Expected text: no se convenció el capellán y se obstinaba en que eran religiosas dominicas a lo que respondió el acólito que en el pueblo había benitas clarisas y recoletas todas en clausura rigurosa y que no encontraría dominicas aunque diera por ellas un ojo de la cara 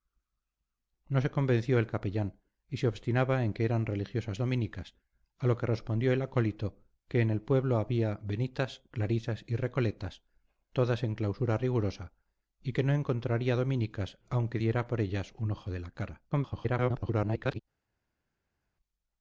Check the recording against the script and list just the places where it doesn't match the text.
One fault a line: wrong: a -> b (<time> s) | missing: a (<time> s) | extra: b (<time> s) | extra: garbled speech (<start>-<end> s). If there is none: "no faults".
extra: garbled speech (16.3-17.6 s)